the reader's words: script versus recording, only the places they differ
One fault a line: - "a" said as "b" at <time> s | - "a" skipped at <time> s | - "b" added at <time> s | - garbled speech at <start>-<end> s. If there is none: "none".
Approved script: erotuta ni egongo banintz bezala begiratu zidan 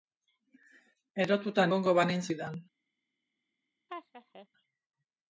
- "ni" skipped at 1.6 s
- "bezala begiratu" skipped at 2.3 s